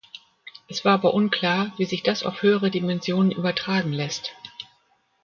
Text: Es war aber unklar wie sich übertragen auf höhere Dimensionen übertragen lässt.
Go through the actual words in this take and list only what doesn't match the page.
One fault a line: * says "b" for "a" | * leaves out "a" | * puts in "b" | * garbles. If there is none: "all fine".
* says "das" for "übertragen"